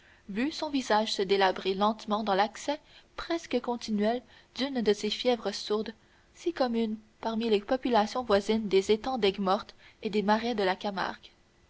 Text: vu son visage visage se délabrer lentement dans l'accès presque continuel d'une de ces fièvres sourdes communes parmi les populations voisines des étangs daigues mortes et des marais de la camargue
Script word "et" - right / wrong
right